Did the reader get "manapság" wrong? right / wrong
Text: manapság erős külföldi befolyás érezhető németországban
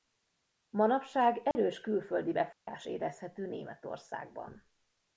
right